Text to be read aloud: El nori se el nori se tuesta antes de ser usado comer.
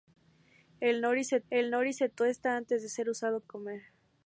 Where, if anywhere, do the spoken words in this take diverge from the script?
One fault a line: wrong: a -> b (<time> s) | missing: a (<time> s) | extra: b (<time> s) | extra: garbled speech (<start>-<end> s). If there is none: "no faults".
no faults